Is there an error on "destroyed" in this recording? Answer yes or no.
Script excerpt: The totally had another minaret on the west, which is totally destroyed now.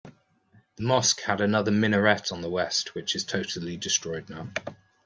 no